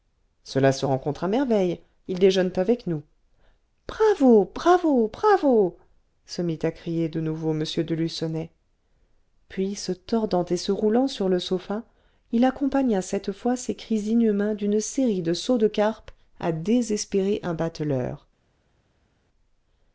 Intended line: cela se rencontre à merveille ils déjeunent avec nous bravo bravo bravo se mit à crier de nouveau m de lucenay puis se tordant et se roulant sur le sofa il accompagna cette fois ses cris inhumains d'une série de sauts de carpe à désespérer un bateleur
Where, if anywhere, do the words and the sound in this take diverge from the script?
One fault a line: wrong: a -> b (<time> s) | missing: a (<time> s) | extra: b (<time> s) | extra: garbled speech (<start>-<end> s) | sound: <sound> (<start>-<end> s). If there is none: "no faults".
no faults